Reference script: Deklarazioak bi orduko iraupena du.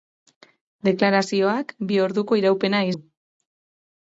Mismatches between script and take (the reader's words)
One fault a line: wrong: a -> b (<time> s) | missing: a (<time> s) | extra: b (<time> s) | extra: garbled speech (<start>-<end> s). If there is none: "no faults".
no faults